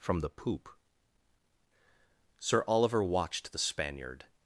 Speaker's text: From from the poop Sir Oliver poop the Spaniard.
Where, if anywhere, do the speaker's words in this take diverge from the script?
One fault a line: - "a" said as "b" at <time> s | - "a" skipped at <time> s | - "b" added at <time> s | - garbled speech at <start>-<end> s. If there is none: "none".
- "from" skipped at 0.2 s
- "poop" said as "watched" at 3.0 s